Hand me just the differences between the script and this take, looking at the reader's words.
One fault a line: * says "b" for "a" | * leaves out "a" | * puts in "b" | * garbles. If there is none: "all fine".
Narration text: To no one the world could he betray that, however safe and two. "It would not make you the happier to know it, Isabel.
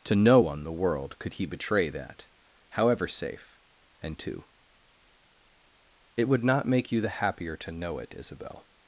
all fine